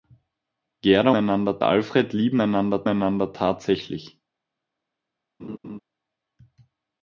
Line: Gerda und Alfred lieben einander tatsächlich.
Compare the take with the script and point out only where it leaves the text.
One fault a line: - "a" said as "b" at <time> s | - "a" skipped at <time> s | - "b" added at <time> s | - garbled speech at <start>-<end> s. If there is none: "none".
- "und" said as "einander" at 1.1 s
- "einander" added at 2.9 s